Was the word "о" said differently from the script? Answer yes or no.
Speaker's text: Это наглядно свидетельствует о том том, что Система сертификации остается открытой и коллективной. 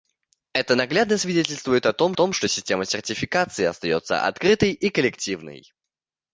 no